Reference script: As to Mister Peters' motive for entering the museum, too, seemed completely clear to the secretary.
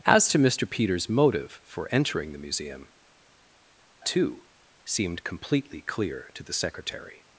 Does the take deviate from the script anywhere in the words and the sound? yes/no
no